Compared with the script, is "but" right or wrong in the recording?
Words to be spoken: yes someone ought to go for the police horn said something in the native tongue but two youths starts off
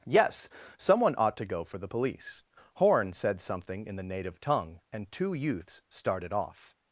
wrong